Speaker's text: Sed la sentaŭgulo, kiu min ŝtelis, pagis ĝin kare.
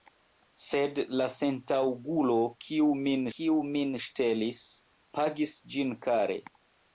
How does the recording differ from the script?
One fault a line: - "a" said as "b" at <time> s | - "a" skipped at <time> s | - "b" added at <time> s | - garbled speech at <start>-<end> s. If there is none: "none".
- "kiu min" added at 3.4 s